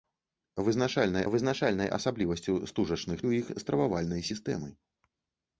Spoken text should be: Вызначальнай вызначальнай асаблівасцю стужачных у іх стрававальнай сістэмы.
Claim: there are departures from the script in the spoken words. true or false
false